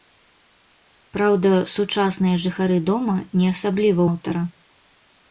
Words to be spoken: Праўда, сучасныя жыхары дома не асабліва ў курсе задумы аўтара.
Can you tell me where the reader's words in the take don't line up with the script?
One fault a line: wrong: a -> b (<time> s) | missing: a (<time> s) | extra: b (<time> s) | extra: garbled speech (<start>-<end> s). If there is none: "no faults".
missing: ў курсе задумы (4.0 s)